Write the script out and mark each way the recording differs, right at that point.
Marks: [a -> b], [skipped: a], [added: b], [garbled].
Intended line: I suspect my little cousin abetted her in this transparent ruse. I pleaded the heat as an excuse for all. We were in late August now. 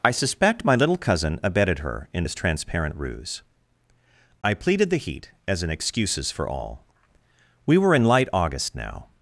I suspect my little cousin abetted her in this transparent ruse. I pleaded the heat as an [excuse -> excuses] for all. We were in [late -> light] August now.